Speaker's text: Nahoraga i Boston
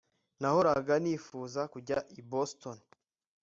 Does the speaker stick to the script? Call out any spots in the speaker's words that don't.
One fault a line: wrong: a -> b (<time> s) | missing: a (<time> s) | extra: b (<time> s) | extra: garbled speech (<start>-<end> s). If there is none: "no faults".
extra: nifuza kujya (1.0 s)